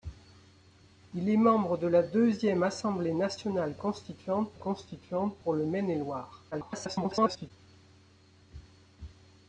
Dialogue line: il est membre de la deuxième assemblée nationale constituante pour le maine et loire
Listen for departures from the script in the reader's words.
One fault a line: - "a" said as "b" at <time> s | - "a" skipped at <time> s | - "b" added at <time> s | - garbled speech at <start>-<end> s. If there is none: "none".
- "constituante" added at 4.6 s
- garbled speech at 6.5-7.5 s